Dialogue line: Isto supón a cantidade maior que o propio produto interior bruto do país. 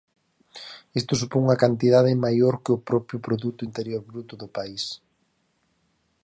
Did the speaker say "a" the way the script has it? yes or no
no